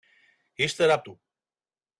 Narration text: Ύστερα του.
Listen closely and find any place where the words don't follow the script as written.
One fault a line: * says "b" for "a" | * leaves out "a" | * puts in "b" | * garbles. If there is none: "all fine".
all fine